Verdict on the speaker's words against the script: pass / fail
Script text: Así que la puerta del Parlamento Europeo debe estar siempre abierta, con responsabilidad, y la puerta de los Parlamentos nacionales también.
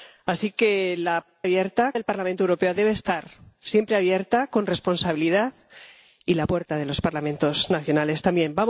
fail